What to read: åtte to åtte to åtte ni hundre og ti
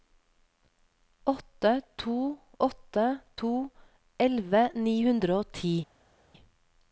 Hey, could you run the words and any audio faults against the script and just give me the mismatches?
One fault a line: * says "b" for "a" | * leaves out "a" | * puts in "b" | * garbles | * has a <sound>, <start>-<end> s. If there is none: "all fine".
* says "elleve" for "åtte"